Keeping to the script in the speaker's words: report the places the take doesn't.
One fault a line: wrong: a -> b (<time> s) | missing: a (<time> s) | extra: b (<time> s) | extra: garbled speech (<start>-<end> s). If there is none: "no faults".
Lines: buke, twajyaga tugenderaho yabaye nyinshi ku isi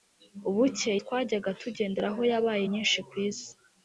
no faults